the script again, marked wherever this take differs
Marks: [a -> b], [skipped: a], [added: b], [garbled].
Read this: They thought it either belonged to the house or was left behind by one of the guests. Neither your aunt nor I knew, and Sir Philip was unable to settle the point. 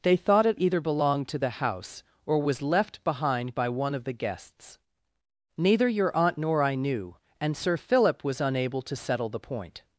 They thought it either belonged to the house or was left behind by one of the guests. Neither your aunt nor I knew, and Sir Philip was unable to settle the point.